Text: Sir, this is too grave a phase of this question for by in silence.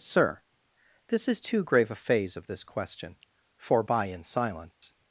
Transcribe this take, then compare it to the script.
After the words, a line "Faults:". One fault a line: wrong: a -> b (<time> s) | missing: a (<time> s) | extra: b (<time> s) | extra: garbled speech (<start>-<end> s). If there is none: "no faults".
Sir, this is too grave a phase of this question for by in silence.
Faults:
no faults